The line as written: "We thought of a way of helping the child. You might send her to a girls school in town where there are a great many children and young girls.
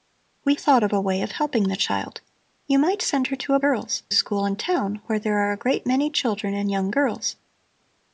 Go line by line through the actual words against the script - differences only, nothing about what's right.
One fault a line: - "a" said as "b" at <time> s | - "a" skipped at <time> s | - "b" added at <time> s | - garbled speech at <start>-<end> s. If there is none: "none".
none